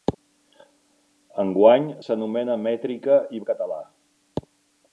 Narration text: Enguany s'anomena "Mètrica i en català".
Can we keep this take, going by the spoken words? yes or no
yes